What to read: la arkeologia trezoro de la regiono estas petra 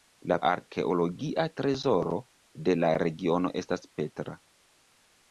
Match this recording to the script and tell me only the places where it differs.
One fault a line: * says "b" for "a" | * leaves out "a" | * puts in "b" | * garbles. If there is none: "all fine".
all fine